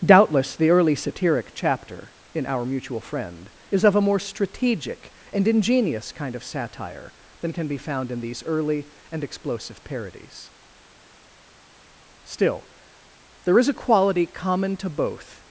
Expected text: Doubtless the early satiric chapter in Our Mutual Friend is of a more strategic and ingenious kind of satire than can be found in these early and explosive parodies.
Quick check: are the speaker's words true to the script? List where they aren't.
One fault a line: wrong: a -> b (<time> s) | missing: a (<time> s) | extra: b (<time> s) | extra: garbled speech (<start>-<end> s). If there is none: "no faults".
extra: Still there is a quality common to both (12.2 s)